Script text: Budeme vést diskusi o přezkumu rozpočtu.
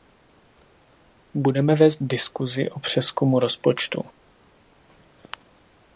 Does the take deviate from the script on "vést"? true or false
false